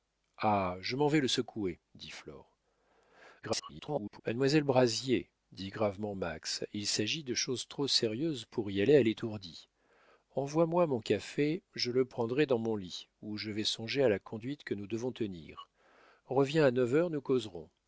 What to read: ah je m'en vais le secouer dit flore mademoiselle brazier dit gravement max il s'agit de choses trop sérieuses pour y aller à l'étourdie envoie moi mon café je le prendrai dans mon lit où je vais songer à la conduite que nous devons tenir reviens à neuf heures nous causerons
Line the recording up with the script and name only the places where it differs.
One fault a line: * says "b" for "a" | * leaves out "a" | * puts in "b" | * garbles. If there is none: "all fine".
* garbles